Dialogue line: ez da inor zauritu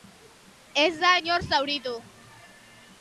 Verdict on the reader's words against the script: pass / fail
pass